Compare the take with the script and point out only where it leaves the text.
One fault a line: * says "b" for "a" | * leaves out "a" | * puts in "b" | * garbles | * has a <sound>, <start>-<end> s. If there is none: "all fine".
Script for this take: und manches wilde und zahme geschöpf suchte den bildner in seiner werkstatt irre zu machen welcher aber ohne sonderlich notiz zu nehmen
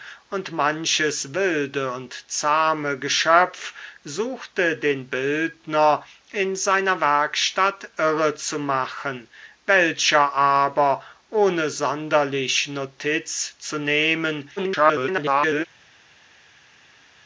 * garbles